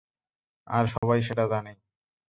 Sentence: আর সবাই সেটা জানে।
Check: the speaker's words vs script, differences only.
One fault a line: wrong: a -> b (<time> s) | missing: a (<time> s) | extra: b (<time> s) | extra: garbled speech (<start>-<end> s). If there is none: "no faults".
no faults